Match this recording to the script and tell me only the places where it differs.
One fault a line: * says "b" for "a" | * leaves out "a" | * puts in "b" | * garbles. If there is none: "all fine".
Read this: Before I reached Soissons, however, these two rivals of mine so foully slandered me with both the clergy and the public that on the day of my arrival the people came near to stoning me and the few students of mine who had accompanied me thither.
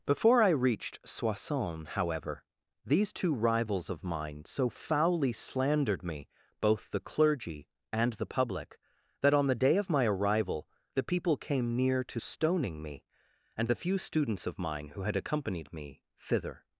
* leaves out "with"